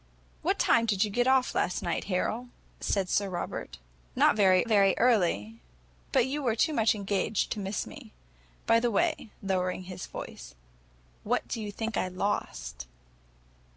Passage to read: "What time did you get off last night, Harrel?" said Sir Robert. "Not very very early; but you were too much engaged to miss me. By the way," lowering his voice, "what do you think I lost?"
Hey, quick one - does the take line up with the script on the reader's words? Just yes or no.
yes